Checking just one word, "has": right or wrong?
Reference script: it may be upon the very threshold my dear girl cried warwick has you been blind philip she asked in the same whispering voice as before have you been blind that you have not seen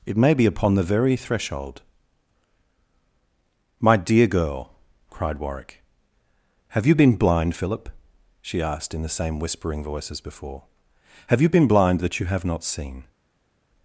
wrong